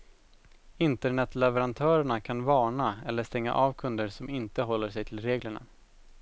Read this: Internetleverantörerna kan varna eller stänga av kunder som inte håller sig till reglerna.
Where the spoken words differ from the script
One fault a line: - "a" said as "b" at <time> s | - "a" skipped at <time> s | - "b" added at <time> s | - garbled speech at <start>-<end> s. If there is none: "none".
none